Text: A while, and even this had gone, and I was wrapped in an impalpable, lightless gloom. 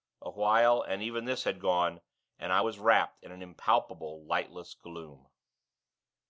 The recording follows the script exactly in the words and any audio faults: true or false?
true